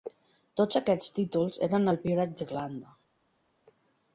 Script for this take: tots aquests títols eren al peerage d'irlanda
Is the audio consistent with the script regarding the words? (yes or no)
yes